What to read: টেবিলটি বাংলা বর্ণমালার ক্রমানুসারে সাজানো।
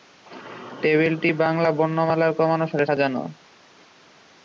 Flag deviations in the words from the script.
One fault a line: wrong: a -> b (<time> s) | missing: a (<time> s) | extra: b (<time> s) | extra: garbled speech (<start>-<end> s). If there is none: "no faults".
no faults